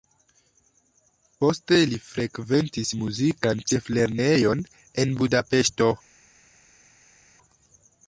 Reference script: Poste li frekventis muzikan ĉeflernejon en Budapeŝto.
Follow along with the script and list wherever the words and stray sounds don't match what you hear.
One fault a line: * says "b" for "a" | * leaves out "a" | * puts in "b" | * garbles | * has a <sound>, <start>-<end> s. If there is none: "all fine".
all fine